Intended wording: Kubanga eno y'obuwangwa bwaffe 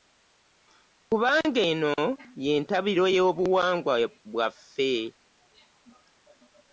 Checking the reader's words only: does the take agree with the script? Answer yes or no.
no